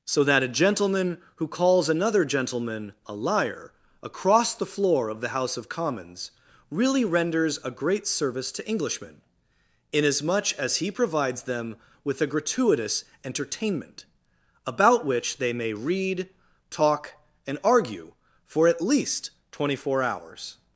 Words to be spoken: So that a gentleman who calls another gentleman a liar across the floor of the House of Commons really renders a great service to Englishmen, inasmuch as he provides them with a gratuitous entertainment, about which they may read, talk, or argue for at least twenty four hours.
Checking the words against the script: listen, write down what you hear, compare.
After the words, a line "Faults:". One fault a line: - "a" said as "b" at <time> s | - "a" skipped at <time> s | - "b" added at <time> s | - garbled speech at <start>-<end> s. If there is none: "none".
So that a gentleman who calls another gentleman a liar across the floor of the House of Commons really renders a great service to Englishmen, inasmuch as he provides them with a gratuitous entertainment, about which they may read, talk, and argue for at least twenty four hours.
Faults:
- "or" said as "and" at 17.4 s